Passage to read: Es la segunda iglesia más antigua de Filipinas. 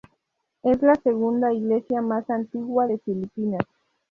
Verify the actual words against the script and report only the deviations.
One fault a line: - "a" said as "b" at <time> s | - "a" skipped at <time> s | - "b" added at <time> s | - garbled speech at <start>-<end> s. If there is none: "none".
none